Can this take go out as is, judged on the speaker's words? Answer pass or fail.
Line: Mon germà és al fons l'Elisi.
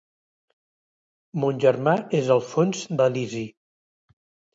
pass